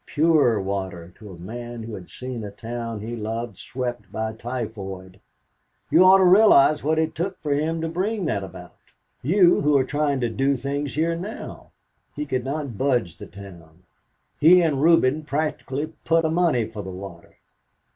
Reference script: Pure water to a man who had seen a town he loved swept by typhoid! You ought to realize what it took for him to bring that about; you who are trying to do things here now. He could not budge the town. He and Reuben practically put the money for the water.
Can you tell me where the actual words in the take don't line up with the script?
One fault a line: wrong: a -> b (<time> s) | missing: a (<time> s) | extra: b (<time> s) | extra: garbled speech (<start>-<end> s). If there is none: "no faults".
no faults